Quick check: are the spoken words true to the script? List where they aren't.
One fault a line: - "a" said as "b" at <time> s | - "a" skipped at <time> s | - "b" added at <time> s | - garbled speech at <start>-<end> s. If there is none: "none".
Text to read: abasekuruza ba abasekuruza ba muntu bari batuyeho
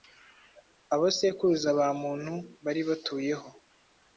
- "abasekuruza ba" skipped at 1.9 s